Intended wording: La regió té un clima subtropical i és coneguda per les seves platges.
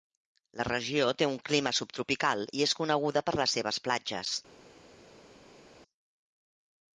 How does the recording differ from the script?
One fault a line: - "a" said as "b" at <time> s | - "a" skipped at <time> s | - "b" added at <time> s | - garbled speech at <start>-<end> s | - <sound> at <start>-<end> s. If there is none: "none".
none